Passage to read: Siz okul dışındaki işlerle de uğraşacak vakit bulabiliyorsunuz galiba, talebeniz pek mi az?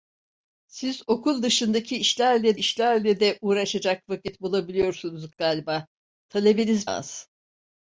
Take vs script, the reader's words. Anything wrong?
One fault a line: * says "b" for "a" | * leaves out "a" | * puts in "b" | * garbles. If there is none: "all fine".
* puts in "işlerle"
* leaves out "pek mi"